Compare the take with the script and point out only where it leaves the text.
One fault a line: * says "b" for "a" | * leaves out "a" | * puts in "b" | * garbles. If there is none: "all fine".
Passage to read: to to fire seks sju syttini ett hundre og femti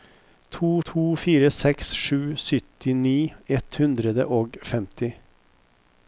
all fine